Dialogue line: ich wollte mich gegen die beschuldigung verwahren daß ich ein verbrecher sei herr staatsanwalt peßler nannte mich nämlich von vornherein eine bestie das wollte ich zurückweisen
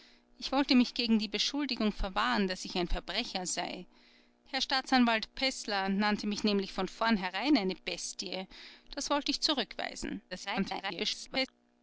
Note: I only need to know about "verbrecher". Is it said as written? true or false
true